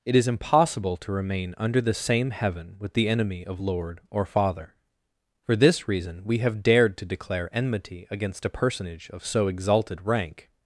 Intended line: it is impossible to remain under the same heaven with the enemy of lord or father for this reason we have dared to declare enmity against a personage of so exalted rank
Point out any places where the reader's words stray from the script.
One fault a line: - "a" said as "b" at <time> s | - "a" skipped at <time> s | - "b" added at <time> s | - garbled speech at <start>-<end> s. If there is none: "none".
none